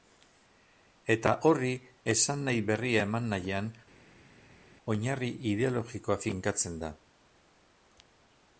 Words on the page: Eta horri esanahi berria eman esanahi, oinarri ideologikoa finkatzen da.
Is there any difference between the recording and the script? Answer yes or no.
yes